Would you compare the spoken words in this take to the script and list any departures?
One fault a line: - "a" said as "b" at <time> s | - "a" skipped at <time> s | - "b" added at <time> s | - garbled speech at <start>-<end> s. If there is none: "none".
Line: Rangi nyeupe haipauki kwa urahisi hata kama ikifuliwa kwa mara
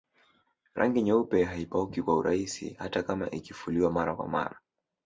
- "mara" added at 3.9 s